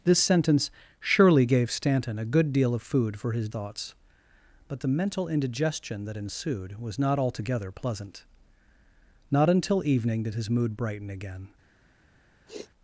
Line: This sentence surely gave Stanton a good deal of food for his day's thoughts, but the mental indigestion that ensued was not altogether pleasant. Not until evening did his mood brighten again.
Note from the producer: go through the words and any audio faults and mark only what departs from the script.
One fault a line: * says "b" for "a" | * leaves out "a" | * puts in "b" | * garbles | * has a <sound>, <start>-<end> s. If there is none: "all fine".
* leaves out "day's"
* has a sniff, 12.5-12.7 s